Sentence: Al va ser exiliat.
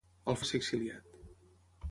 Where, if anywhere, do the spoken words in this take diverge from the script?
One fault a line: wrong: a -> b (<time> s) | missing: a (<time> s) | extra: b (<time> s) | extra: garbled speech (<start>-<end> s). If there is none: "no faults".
no faults